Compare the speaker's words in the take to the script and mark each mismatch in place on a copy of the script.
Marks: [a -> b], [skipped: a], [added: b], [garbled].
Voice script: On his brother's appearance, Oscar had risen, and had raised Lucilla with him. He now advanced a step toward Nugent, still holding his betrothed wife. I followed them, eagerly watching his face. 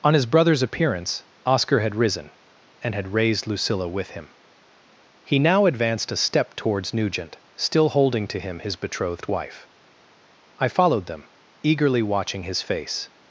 On his brother's appearance, Oscar had risen, and had raised Lucilla with him. He now advanced a step [toward -> towards] Nugent, still holding [added: to him] his betrothed wife. I followed them, eagerly watching his face.